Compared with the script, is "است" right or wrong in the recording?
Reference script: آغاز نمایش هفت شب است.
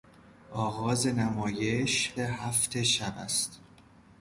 right